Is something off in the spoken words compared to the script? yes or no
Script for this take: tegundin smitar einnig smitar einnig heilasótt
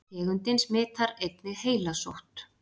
yes